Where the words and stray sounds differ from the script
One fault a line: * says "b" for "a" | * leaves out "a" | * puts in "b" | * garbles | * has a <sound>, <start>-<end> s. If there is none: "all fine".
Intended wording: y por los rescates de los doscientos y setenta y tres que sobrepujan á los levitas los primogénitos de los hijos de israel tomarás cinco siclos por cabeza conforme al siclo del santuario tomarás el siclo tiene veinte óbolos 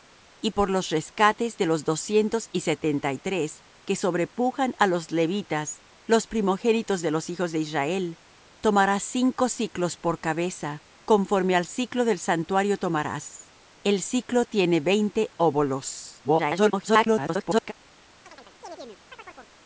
* garbles
* has a chirp, 18.3-19.5 s